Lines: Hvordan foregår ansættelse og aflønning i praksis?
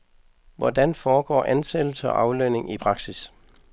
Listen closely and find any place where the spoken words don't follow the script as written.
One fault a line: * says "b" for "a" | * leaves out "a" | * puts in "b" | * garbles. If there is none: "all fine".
all fine